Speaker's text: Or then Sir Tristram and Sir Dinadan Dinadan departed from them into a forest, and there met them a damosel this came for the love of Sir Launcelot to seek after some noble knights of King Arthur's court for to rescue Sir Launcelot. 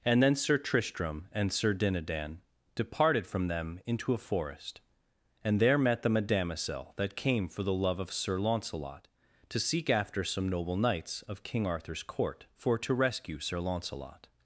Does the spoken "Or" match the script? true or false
false